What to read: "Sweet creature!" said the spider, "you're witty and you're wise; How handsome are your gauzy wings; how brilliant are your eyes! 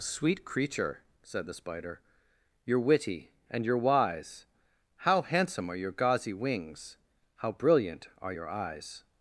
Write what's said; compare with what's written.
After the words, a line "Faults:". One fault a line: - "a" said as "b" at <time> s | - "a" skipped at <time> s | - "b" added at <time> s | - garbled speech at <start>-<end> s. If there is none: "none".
"Sweet creature!" said the spider, "you're witty and you're wise; How handsome are your gauzy wings; how brilliant are your eyes!
Faults:
none